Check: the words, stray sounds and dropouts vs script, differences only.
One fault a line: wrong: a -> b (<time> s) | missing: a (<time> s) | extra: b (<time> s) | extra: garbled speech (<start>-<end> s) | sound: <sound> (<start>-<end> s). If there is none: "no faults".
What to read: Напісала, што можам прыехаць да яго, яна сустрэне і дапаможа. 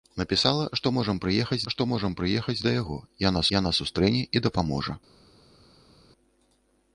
extra: што можам прыехаць (1.7 s)
extra: яна (3.6 s)